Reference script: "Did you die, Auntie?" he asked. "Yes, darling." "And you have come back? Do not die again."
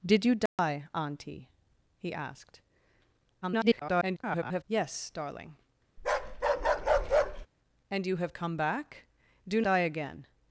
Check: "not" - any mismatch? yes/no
yes